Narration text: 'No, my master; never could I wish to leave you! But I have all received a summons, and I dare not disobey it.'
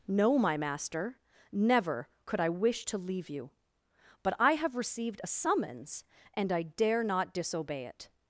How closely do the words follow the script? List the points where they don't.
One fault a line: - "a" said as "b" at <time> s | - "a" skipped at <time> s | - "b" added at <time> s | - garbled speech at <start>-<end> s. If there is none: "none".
- "all" skipped at 4.8 s